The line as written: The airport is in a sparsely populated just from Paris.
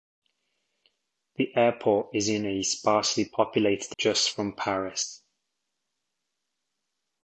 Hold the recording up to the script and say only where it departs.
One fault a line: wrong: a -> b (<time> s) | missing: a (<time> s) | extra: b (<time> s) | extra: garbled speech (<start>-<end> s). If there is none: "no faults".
no faults